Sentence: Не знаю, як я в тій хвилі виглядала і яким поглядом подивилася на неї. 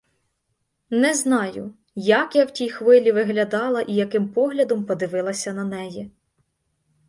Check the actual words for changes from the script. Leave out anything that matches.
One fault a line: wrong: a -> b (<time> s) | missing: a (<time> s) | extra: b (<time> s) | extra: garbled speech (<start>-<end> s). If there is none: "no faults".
no faults